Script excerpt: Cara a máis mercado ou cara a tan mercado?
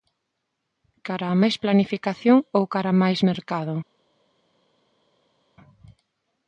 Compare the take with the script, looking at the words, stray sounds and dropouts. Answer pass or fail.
fail